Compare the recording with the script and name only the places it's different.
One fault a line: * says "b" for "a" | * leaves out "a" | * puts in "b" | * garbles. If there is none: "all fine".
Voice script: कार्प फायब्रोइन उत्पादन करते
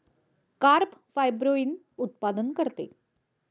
all fine